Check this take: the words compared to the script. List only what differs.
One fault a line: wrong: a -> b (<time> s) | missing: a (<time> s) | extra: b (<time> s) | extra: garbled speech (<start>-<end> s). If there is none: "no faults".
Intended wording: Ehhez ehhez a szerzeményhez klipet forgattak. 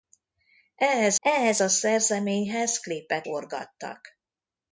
no faults